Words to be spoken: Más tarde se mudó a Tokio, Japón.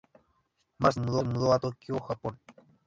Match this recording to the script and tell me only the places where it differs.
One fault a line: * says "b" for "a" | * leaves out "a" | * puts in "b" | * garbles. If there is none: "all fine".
* says "mudó" for "tarde"